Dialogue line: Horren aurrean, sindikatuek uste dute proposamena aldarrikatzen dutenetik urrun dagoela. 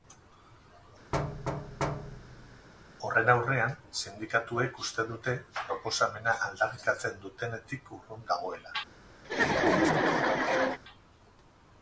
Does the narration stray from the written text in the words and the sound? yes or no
yes